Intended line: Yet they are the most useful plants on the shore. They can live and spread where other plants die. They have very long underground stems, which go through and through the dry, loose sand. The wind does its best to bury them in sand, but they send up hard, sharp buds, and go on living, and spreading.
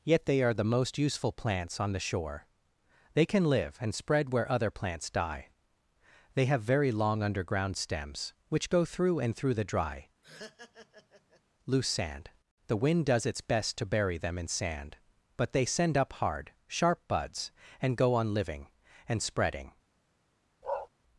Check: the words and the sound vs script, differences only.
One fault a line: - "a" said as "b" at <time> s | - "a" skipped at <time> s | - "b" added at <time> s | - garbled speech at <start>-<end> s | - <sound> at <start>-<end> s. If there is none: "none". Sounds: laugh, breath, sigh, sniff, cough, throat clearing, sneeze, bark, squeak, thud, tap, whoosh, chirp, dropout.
- laugh at 10.2-11.4 s
- bark at 20.6-20.9 s